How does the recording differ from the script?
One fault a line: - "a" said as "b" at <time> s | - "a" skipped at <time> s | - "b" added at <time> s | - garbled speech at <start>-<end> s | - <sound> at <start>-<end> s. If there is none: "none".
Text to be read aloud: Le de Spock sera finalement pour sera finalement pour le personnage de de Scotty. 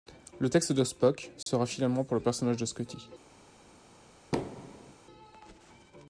- "texte" added at 0.5 s
- dropout at 1.4-1.5 s
- "sera finalement pour" skipped at 2.1 s
- "de" skipped at 2.6 s
- thud at 4.3-4.9 s